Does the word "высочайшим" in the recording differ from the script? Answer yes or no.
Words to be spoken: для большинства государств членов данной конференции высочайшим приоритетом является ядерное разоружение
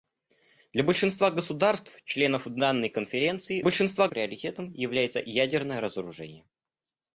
yes